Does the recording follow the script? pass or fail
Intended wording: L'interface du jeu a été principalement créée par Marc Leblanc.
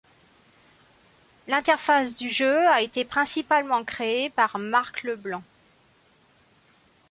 pass